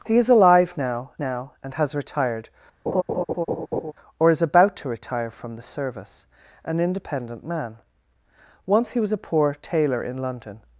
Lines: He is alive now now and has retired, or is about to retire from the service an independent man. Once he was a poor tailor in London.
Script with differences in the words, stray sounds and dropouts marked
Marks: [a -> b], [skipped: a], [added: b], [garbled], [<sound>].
He is alive now now and has retired, [laugh] or is about to retire from the service an independent man. Once he was a poor tailor in London.